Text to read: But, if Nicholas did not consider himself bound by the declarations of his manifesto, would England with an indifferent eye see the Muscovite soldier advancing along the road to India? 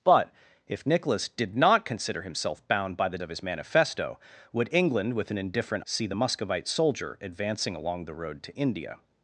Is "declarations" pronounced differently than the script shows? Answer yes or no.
yes